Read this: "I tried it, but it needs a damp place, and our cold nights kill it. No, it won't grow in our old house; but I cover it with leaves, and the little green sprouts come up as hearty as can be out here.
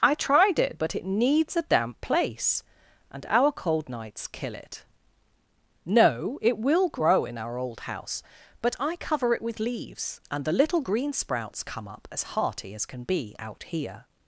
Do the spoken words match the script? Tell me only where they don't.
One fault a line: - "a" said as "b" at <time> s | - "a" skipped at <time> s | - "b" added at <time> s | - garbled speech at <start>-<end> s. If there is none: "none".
- "won't" said as "will" at 6.6 s